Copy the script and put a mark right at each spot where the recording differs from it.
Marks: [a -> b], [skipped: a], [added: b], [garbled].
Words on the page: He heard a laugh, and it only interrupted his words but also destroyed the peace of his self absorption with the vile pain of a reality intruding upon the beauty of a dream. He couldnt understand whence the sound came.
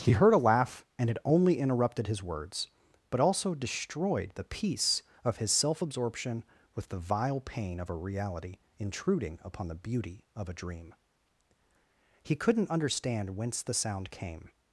He heard a laugh, and it only interrupted his words but also destroyed the peace of his self absorption with the vile pain of a reality intruding upon the beauty of a dream. He couldnt understand whence the sound came.